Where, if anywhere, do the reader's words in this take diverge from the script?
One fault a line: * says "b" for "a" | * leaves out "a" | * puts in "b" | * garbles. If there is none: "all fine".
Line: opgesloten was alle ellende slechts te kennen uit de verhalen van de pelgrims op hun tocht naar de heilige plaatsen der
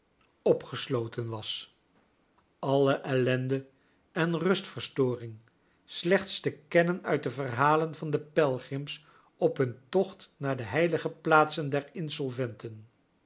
* puts in "en rustverstoring"